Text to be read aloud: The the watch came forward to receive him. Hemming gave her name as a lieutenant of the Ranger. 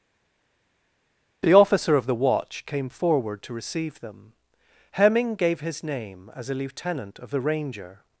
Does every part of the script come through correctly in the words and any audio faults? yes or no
no